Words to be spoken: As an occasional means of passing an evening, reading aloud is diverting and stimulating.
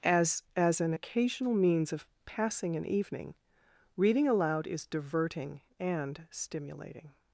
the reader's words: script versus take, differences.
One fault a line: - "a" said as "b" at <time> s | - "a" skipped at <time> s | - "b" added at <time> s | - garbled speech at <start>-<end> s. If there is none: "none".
- "as" added at 0.6 s